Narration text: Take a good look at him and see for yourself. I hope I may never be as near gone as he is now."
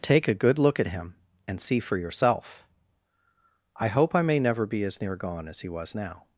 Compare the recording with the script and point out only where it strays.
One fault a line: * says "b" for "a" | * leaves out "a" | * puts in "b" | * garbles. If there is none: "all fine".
* says "was" for "is"